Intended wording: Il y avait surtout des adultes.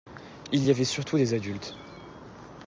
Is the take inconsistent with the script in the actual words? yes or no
no